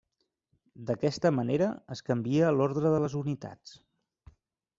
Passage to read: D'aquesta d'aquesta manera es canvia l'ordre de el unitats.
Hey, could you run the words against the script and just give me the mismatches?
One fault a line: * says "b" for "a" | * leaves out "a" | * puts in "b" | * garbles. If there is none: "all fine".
* leaves out "d'aquesta"
* says "les" for "el"